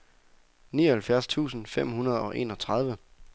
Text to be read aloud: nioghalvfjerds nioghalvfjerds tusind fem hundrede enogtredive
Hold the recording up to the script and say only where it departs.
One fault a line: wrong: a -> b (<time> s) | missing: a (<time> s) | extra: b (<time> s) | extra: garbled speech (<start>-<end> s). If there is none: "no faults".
missing: nioghalvfjerds (1.3 s)
extra: og (2.2 s)